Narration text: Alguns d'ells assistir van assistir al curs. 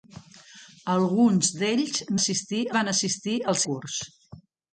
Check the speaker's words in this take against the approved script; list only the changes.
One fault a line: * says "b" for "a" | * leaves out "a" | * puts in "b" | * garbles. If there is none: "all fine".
all fine